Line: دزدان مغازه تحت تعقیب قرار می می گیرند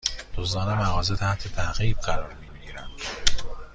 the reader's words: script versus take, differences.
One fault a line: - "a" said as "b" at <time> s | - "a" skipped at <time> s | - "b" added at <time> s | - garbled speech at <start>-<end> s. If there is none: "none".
none